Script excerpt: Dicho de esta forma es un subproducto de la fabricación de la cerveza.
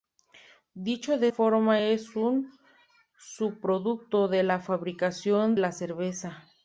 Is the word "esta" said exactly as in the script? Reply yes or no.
no